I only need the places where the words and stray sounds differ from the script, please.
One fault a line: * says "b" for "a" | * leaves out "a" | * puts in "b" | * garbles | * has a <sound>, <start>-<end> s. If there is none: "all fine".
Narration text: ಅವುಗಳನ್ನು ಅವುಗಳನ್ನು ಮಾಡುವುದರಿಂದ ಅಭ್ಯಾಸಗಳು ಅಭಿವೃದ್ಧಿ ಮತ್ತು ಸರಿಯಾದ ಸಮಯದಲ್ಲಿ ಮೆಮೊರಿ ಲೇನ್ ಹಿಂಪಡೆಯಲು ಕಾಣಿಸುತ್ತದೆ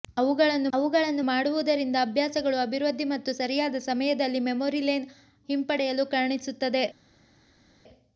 all fine